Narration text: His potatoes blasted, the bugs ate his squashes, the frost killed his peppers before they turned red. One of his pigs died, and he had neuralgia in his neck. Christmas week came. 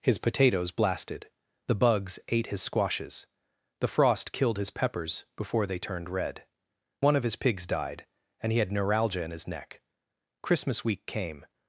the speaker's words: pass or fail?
pass